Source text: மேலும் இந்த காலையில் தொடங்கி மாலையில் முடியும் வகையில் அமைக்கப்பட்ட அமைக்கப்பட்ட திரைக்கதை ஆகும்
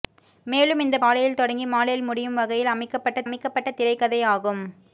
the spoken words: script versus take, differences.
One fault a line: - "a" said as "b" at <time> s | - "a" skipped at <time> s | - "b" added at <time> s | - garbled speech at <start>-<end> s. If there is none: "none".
none